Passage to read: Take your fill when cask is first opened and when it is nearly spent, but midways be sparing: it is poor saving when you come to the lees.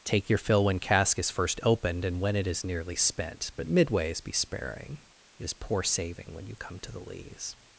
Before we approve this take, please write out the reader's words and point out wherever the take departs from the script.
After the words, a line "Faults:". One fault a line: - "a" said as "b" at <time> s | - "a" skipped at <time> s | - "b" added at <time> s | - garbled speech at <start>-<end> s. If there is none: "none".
Take your fill when cask is first opened and when it is nearly spent, but midways be sparing: it is poor saving when you come to the lees.
Faults:
none